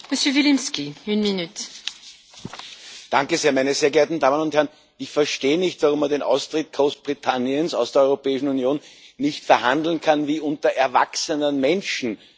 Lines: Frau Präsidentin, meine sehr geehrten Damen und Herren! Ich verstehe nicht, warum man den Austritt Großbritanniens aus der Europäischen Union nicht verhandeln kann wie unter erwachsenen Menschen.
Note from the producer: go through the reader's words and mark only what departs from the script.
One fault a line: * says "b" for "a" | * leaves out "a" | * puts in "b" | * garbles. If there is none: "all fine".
all fine